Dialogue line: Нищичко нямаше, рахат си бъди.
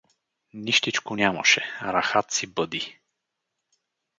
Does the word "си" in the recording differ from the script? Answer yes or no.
no